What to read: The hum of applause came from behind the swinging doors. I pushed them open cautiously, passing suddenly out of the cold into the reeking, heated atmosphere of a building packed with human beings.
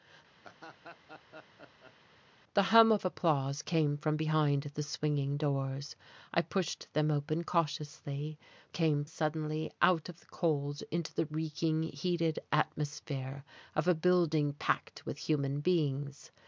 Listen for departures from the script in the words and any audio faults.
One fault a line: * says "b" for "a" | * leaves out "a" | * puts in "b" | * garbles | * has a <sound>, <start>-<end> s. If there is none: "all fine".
* has a laugh, 0.4-1.9 s
* says "came" for "passing"